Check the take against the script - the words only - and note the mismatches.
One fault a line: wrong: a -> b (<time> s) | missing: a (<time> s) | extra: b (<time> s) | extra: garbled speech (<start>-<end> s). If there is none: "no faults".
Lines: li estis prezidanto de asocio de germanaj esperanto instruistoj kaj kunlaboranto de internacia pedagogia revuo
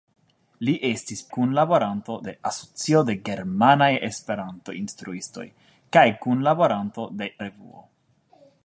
wrong: prezidanto -> kunlaboranto (1.4 s)
missing: internacia pedagogia (7.3 s)